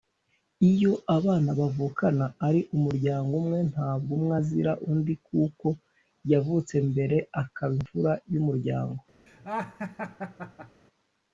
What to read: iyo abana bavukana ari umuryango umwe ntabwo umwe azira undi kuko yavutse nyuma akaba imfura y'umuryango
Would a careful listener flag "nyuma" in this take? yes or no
yes